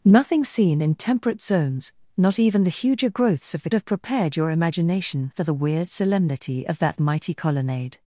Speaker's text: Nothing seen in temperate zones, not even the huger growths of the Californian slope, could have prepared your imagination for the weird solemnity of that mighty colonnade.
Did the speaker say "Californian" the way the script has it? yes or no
no